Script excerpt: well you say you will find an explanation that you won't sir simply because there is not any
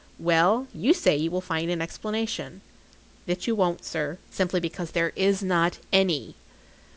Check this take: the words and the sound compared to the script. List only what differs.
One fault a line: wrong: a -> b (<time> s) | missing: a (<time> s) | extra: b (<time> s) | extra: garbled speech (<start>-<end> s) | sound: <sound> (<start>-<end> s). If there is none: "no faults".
no faults